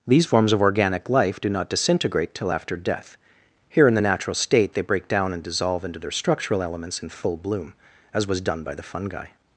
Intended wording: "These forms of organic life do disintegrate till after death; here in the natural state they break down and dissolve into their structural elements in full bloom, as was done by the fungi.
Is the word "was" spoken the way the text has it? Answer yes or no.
yes